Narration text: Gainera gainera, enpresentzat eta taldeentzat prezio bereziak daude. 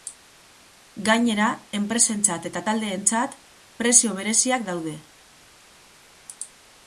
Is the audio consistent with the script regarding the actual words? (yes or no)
no